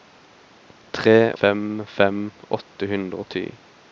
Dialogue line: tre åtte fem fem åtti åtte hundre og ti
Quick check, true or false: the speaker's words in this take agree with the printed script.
false